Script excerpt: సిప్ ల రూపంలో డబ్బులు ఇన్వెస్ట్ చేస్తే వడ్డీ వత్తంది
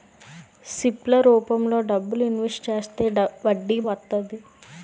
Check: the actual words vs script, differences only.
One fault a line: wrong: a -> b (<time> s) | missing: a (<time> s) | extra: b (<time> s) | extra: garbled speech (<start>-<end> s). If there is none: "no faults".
no faults